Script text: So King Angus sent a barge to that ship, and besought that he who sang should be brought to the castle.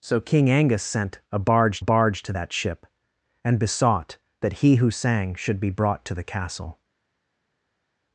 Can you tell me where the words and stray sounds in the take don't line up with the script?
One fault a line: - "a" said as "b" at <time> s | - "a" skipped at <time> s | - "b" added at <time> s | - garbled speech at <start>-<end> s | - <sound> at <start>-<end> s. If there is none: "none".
- "barge" added at 1.8 s